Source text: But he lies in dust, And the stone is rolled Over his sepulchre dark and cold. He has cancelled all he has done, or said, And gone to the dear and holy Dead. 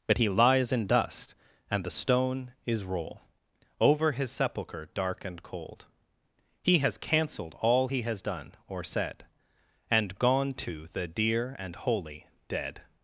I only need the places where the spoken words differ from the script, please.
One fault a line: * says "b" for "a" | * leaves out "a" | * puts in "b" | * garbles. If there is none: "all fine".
* says "roll" for "rolled"